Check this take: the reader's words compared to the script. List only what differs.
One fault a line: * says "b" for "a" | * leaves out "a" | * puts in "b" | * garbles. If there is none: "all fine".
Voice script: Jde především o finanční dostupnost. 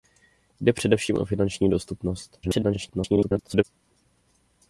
* garbles